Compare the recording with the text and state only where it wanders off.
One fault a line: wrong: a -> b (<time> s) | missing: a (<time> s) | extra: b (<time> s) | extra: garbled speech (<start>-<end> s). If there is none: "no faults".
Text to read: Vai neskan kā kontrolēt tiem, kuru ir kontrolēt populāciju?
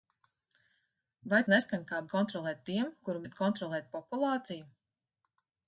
no faults